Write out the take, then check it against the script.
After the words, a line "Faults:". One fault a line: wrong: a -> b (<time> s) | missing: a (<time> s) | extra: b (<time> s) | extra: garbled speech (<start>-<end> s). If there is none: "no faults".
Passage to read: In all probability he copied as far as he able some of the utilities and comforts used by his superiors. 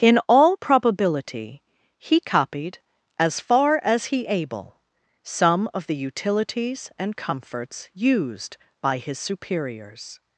In all probability he copied as far as he able some of the utilities and comforts used by his superiors.
Faults:
no faults